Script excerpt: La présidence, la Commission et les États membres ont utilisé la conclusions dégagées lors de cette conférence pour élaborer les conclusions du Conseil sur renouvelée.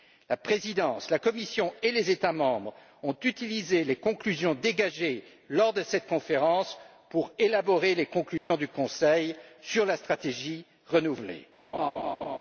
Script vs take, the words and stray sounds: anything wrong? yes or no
yes